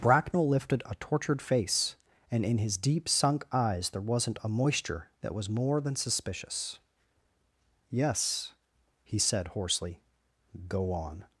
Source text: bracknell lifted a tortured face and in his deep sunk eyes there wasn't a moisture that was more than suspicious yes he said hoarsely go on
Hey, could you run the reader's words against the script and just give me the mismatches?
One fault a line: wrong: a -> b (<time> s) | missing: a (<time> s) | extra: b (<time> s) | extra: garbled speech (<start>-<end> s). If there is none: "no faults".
no faults